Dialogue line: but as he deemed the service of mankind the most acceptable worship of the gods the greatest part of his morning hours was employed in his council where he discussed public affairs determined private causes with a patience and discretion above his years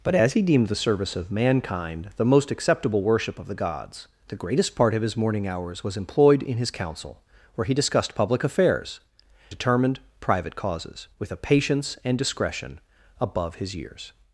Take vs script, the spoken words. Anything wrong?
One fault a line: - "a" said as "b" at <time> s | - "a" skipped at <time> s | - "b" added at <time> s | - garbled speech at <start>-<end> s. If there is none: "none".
none